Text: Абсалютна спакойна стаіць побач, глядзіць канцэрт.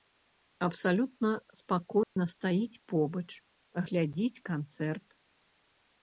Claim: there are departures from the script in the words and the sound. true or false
true